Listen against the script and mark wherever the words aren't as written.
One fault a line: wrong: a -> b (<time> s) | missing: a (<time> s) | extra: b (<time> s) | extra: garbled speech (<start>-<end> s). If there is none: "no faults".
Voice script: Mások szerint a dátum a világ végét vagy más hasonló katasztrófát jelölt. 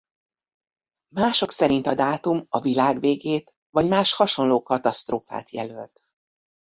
no faults